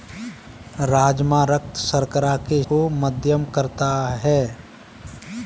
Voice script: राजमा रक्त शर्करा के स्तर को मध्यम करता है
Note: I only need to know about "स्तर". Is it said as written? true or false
false